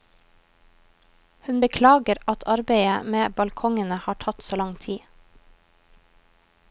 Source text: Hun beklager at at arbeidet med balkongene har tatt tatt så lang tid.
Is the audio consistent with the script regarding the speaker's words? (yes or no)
no